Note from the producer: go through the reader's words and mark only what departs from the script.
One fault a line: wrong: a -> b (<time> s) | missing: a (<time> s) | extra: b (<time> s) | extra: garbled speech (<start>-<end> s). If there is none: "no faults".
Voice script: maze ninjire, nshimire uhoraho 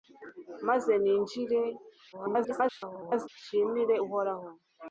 extra: garbled speech (2.1-3.3 s)